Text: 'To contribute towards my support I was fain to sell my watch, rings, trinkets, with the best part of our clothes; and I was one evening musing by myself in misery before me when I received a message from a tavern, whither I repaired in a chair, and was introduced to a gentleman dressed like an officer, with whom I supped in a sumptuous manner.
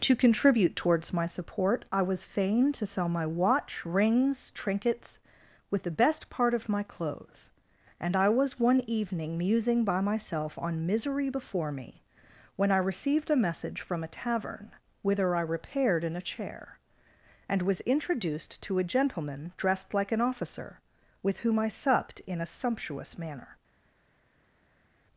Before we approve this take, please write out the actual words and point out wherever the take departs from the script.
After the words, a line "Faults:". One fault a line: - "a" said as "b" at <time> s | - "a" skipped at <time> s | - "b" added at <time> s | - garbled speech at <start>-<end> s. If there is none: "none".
'To contribute towards my support I was fain to sell my watch, rings, trinkets, with the best part of my clothes; and I was one evening musing by myself on misery before me when I received a message from a tavern, whither I repaired in a chair, and was introduced to a gentleman dressed like an officer, with whom I supped in a sumptuous manner.
Faults:
- "our" said as "my" at 6.7 s
- "in" said as "on" at 10.6 s